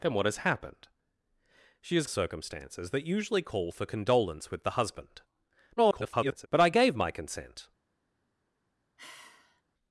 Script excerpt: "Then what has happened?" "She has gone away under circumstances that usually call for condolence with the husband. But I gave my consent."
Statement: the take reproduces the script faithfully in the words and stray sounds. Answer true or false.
false